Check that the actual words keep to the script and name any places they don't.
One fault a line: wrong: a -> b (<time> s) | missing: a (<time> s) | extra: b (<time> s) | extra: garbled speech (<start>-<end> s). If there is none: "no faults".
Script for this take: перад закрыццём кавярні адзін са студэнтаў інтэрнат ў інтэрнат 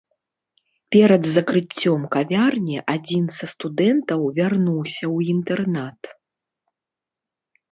wrong: інтэрнат -> вярнуўся (4.4 s)